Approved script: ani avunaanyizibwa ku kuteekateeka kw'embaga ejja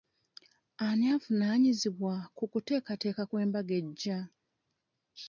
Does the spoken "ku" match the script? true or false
true